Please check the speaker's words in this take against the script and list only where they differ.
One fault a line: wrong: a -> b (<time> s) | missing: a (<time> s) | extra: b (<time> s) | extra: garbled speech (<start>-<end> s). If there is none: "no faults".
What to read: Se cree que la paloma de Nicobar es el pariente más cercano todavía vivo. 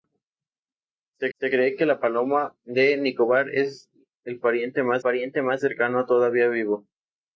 extra: se (1.4 s)
extra: pariente más (5.0 s)